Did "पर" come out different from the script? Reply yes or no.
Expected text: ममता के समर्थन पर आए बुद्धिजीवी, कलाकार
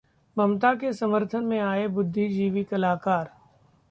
yes